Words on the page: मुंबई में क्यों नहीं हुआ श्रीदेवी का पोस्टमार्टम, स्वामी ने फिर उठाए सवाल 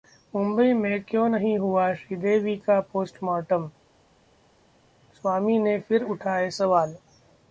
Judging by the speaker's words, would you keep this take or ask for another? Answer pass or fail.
pass